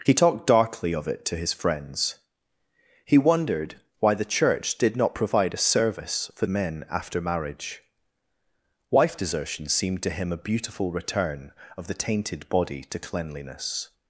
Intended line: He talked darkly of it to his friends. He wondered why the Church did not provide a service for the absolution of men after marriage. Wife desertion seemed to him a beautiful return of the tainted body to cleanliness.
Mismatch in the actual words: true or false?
true